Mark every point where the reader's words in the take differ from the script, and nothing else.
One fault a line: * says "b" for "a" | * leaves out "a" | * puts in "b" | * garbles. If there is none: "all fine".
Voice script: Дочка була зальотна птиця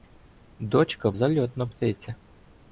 * leaves out "була"